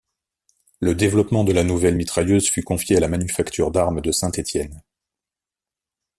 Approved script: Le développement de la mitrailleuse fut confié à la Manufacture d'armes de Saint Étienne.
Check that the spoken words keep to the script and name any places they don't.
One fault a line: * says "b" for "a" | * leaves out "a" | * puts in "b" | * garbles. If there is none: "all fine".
* puts in "nouvelle"